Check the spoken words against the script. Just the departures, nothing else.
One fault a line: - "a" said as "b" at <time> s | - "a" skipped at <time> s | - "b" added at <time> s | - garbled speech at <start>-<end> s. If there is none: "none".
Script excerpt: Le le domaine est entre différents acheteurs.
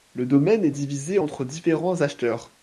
- "le" skipped at 0.2 s
- "divisé" added at 0.7 s